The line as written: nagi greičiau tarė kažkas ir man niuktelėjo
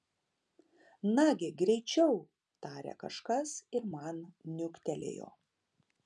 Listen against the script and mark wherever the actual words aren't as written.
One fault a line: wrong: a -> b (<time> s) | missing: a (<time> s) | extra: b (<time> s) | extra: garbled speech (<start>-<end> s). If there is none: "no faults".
no faults